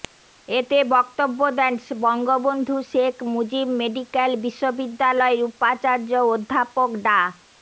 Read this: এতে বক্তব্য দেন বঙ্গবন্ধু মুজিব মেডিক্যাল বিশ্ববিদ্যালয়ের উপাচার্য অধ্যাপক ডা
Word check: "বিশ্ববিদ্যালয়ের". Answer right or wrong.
right